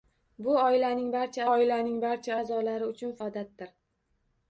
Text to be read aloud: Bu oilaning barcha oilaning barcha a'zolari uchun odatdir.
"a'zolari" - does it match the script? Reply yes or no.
yes